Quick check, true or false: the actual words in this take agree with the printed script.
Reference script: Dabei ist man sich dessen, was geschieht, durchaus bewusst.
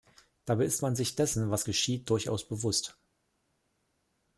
true